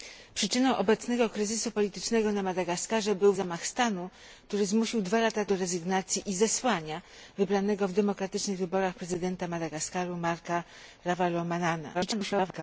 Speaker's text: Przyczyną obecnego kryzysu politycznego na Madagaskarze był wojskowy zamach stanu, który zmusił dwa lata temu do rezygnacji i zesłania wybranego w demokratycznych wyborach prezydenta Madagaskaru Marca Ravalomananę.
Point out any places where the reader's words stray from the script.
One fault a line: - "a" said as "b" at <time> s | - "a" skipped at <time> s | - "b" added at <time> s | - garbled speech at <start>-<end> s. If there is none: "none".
- "wojskowy" skipped at 3.3 s
- "temu" skipped at 5.4 s
- garbled speech at 11.9-12.6 s